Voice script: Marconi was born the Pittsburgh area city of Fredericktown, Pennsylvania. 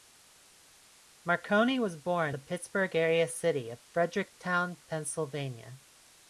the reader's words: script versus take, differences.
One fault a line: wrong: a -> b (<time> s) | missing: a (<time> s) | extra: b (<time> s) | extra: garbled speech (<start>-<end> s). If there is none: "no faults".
no faults